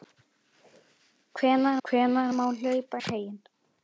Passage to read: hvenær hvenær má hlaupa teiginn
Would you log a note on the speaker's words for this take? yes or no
no